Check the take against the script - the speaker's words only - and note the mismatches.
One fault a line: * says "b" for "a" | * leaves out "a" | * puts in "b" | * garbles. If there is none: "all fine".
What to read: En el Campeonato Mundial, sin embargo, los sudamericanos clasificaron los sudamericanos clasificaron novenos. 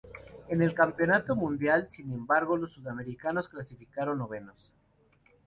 * leaves out "los sudamericanos clasificaron"